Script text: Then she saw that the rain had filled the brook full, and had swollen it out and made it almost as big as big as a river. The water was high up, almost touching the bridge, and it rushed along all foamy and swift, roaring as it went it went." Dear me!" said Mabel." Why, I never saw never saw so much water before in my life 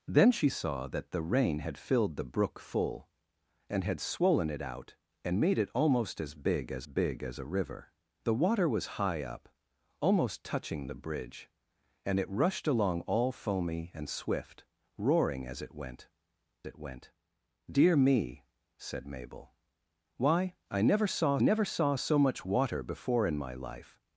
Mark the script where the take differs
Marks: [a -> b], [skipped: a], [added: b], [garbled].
Then she saw that the rain had filled the brook full, and had swollen it out and made it almost as big as big as a river. The water was high up, almost touching the bridge, and it rushed along all foamy and swift, roaring as it went it went." Dear me!" said Mabel." Why, I never saw never saw so much water before in my life